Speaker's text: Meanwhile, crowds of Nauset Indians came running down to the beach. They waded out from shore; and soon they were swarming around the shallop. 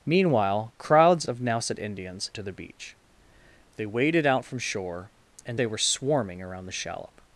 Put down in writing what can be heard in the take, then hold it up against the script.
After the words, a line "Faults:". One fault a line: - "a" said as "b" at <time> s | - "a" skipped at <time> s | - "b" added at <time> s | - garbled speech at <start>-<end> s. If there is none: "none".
Meanwhile, crowds of Nauset Indians to the beach. They waded out from shore; and they were swarming around the shallop.
Faults:
- "came running down" skipped at 2.3 s
- "soon" skipped at 5.6 s